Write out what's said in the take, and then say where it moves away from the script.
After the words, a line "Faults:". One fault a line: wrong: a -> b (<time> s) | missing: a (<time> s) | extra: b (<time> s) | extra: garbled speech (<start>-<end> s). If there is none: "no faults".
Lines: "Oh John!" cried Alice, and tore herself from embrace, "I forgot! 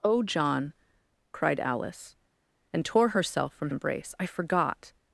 "Oh John!" cried Alice, and tore herself from embrace, "I forgot!
Faults:
no faults